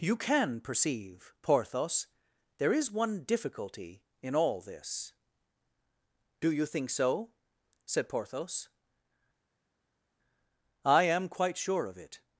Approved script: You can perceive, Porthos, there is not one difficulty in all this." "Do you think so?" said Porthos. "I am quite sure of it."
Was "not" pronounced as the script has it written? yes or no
no